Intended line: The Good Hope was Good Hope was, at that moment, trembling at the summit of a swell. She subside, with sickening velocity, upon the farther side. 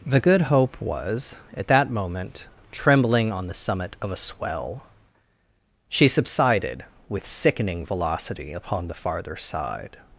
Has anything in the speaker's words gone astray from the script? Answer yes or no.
yes